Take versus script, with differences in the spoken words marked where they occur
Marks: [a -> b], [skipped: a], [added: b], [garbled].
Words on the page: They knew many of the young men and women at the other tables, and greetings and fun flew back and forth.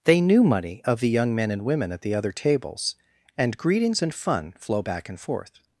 They knew [many -> money] of the young men and women at the other tables, and greetings and fun [flew -> flow] back and forth.